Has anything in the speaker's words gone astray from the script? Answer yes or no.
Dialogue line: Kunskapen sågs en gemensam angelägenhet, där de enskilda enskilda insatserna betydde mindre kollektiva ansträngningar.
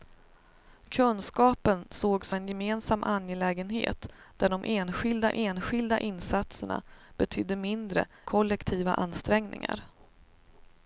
no